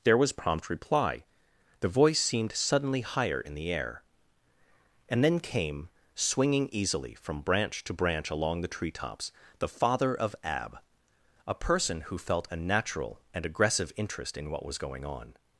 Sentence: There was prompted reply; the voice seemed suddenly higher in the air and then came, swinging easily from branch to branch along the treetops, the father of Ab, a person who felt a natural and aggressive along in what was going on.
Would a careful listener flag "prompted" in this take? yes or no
yes